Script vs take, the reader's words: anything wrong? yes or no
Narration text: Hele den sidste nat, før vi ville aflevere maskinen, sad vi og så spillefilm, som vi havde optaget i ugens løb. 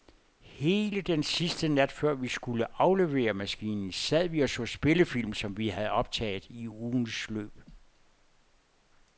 yes